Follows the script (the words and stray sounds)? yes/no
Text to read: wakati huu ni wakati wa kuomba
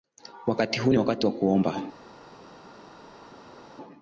yes